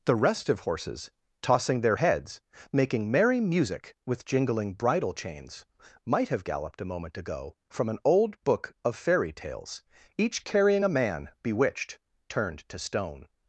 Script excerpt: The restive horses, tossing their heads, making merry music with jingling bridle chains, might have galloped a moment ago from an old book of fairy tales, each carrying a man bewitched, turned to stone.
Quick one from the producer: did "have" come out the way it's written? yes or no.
yes